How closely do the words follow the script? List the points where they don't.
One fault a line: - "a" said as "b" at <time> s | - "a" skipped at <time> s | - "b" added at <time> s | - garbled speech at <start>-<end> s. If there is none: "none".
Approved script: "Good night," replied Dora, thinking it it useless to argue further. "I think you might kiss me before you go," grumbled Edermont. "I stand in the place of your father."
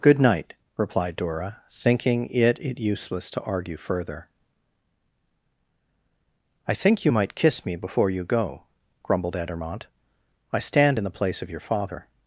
none